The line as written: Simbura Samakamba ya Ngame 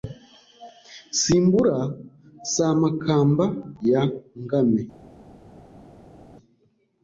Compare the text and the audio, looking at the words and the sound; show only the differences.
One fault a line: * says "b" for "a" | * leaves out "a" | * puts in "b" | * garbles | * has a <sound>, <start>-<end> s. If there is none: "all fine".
all fine